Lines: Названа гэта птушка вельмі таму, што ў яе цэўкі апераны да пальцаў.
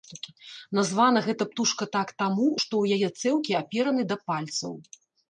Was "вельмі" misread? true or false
true